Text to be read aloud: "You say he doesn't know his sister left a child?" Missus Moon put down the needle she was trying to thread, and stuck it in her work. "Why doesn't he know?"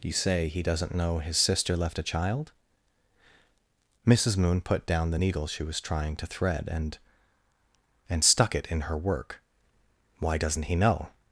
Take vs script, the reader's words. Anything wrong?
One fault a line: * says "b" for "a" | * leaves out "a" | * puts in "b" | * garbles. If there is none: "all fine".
* puts in "and"